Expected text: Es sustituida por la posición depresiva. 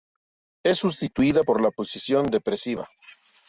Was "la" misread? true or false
false